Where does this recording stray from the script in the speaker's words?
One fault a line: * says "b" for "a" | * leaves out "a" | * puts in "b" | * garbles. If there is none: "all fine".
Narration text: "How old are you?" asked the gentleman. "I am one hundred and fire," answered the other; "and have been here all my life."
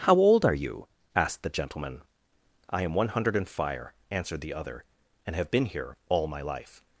all fine